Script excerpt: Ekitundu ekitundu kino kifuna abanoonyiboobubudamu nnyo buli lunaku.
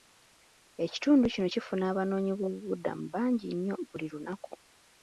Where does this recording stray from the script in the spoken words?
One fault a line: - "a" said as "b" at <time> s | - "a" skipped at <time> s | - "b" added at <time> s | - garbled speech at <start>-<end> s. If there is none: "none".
- "ekitundu" skipped at 1.2 s
- "bangi" added at 3.1 s